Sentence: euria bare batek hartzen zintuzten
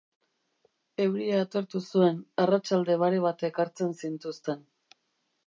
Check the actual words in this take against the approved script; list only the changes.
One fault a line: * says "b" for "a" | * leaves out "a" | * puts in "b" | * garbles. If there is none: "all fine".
* puts in "atertu zuen arratsalde"